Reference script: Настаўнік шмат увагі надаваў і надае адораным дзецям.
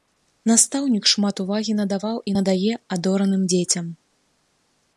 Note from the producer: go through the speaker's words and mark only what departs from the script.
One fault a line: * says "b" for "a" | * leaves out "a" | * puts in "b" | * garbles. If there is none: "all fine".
all fine